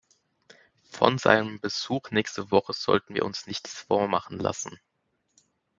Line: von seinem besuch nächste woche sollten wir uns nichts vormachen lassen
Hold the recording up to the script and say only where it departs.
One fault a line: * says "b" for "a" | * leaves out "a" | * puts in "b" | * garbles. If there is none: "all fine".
all fine